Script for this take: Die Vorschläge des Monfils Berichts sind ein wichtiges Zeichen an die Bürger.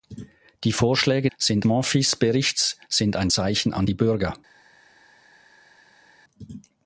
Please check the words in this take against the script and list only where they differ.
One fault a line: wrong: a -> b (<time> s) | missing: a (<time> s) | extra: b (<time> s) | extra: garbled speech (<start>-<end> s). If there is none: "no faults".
wrong: des -> sind (1.4 s)
missing: wichtiges (3.3 s)